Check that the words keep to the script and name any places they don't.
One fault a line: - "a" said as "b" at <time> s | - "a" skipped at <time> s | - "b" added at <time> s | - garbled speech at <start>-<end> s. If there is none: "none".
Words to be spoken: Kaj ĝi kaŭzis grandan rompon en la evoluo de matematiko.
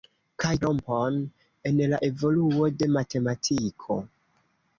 - "ĝi kaŭzis grandan" skipped at 0.5 s